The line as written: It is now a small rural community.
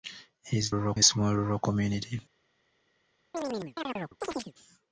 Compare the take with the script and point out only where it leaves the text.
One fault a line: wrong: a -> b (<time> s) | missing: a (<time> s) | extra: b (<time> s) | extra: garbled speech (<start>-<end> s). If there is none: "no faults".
wrong: now -> rural (0.7 s)